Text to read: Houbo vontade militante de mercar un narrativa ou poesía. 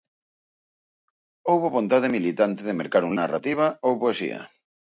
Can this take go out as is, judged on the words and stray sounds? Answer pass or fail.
pass